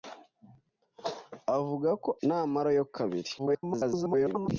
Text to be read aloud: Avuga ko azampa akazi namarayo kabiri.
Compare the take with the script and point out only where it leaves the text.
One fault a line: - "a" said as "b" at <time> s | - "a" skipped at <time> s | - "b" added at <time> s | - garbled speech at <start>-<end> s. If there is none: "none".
- "azampa akazi" skipped at 2.1 s
- garbled speech at 3.4-4.5 s